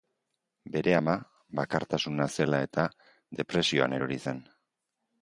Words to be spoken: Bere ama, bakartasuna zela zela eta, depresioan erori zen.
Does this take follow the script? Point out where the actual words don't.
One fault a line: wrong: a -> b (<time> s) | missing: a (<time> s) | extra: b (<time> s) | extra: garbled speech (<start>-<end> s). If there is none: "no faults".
missing: zela (2.6 s)